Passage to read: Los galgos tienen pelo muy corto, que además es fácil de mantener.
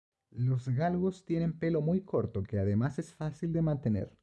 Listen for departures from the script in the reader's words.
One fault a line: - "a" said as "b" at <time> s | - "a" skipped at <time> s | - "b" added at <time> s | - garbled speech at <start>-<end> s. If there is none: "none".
none